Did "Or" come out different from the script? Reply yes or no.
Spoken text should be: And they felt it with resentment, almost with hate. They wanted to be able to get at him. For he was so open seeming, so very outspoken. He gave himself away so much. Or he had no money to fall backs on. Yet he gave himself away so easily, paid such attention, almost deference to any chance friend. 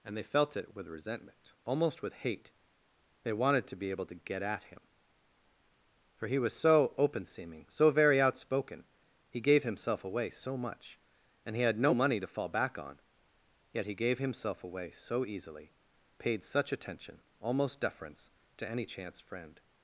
yes